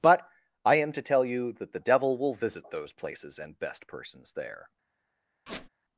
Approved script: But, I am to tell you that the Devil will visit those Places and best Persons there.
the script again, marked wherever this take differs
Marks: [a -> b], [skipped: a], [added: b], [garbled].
But, I am to tell you that the Devil will visit those Places and best Persons there.